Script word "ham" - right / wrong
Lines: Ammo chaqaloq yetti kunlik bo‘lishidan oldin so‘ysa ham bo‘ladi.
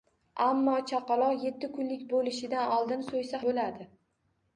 wrong